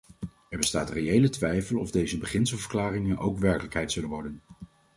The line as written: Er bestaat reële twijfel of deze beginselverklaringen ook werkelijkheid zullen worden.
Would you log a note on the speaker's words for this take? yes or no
no